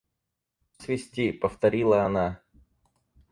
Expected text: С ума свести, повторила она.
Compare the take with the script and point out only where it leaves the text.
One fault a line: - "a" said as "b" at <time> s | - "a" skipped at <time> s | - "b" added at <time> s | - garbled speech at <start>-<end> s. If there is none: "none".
- "ума" skipped at 0.8 s